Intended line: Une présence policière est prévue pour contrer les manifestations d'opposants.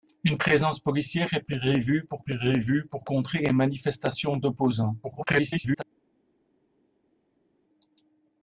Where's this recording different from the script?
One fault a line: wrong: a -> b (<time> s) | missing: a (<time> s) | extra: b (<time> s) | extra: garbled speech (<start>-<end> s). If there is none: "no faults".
extra: prévue pour (2.2 s)
extra: garbled speech (5.0-5.8 s)